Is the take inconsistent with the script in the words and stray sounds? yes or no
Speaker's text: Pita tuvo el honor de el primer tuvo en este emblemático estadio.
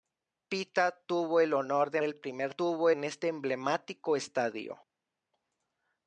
no